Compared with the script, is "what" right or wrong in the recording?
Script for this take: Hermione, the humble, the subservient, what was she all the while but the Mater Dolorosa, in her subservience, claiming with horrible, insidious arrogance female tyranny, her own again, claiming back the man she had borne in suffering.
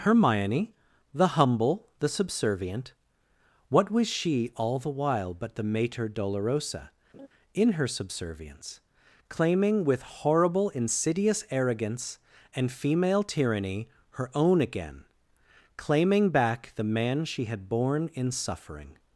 right